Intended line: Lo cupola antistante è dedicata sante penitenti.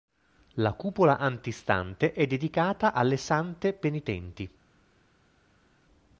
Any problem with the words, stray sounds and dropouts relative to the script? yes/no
yes